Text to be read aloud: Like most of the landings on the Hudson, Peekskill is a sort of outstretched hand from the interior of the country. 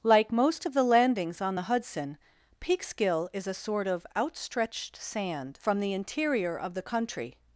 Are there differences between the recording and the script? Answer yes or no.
yes